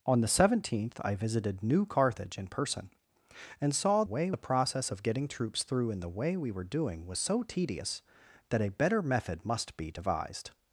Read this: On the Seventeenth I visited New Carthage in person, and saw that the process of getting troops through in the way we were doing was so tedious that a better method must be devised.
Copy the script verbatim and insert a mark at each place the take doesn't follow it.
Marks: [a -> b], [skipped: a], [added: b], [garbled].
On the Seventeenth I visited New Carthage in person, and saw [that -> way] the process of getting troops through in the way we were doing was so tedious that a better method must be devised.